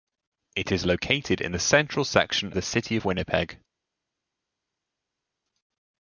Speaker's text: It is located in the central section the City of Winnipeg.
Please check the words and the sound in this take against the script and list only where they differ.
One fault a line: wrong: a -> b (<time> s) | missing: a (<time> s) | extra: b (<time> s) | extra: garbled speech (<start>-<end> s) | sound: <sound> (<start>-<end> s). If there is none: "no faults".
no faults